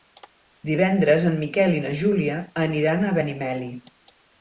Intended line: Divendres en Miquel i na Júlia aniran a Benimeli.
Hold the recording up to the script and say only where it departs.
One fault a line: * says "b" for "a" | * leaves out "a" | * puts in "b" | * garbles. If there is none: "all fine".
all fine